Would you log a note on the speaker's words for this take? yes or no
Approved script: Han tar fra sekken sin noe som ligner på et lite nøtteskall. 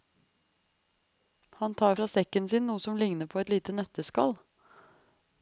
no